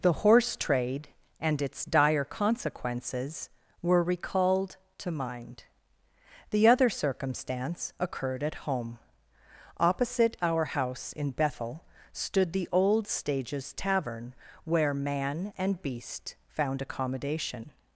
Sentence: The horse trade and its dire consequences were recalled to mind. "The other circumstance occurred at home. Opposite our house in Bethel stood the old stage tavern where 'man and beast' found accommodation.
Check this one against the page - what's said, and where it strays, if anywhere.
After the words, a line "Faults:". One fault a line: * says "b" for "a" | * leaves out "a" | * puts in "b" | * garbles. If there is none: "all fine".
The horse trade and its dire consequences were recalled to mind. "The other circumstance occurred at home. Opposite our house in Bethel stood the old stages tavern where 'man and beast' found accommodation.
Faults:
* says "stages" for "stage"